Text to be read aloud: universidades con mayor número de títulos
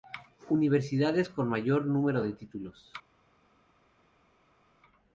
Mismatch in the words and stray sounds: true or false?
false